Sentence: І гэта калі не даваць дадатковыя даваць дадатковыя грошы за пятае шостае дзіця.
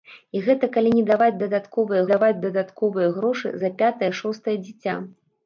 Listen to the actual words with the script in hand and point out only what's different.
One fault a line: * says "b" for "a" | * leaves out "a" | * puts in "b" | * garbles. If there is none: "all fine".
all fine